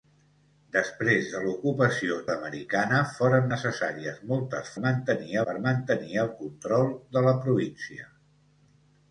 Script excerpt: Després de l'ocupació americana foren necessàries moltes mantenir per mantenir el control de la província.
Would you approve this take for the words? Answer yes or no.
yes